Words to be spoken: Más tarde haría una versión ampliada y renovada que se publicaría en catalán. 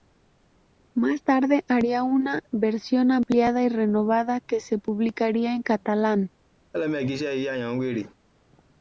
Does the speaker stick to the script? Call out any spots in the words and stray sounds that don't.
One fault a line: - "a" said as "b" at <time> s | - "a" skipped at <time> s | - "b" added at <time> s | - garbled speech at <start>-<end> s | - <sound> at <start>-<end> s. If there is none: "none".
- laugh at 6.7-8.1 s